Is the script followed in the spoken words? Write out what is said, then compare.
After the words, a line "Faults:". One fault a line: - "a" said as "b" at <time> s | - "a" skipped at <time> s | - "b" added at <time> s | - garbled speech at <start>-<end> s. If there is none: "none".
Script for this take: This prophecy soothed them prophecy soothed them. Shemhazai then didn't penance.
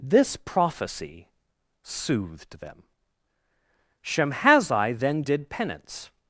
This prophecy soothed them. Shemhazai then did penance.
Faults:
- "prophecy soothed them" skipped at 2.8 s
- "didn't" said as "did" at 5.2 s